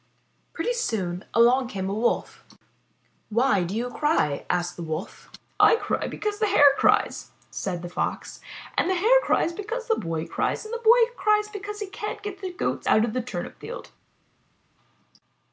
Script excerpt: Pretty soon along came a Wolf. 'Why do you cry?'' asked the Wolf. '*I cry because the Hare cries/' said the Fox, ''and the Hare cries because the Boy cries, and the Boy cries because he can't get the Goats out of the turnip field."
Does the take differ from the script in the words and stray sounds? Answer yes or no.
no